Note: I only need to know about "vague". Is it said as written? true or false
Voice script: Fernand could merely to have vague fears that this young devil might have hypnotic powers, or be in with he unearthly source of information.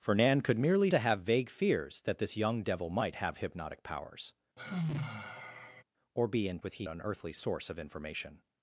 true